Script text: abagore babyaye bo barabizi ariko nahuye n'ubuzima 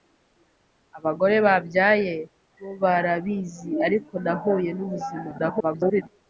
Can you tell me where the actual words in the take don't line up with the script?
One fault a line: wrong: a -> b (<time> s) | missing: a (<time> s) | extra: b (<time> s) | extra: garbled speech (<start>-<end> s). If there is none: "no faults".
extra: garbled speech (5.4-6.0 s)